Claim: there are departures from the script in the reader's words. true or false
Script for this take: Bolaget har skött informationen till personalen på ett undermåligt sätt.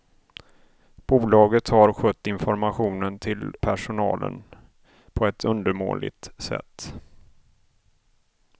false